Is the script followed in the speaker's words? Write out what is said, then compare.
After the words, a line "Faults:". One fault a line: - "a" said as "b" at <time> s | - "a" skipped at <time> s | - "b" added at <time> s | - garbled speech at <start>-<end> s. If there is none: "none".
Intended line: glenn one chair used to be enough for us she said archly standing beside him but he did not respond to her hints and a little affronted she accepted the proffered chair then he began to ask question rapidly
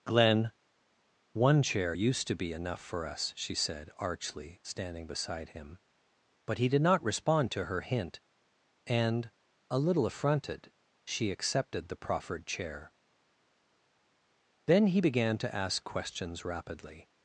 glenn one chair used to be enough for us she said archly standing beside him but he did not respond to her hint and a little affronted she accepted the proffered chair then he began to ask questions rapidly
Faults:
- "hints" said as "hint" at 7.8 s
- "question" said as "questions" at 15.8 s